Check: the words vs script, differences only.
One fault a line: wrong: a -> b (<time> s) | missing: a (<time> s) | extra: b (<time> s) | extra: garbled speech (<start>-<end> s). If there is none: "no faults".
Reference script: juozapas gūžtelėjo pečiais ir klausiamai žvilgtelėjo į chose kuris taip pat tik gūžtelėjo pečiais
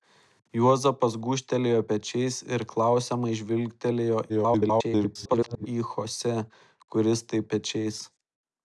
extra: garbled speech (4.3-5.7 s)
missing: pat tik gūžtelėjo (7.5 s)